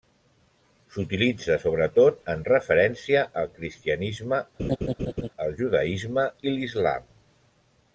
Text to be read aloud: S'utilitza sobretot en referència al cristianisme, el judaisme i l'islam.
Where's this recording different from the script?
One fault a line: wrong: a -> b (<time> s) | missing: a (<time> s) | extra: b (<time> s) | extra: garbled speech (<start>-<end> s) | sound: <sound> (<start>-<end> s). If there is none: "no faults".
sound: laugh (4.6-5.3 s)